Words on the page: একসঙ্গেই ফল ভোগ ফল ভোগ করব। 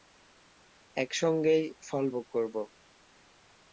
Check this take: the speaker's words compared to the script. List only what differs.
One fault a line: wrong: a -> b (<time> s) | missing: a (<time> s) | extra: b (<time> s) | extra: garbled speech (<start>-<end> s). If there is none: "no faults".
missing: ফল ভোগ (2.3 s)